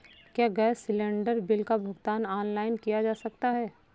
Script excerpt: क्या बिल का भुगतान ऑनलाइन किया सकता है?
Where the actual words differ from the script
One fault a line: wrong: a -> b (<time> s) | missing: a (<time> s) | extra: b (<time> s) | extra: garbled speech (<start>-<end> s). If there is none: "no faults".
extra: गैस सिलेंडर (0.5 s)
extra: जा (3.0 s)